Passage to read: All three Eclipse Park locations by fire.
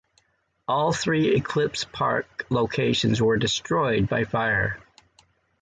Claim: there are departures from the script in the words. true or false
true